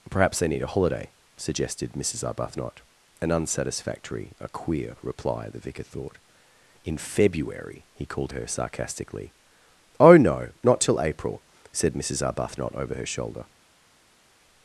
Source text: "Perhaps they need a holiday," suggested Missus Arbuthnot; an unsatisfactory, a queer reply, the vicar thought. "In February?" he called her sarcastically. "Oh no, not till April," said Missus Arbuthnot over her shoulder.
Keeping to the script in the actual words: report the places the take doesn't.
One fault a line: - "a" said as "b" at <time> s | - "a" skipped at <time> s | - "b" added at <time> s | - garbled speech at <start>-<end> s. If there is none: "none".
none